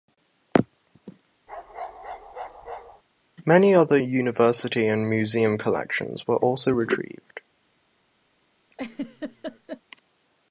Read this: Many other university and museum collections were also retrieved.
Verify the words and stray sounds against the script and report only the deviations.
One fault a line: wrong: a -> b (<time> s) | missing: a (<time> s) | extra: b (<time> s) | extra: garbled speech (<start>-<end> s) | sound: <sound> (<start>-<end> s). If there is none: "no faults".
sound: bark (1.5-3.0 s)
sound: laugh (8.7-9.8 s)